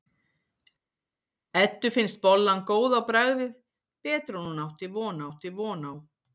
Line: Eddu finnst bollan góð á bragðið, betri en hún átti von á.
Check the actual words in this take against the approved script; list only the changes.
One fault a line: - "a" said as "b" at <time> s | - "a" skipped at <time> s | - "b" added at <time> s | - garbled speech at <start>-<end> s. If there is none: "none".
- "átti von" added at 5.3 s